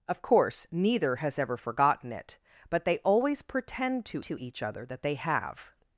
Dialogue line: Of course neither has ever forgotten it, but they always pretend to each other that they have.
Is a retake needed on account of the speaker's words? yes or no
yes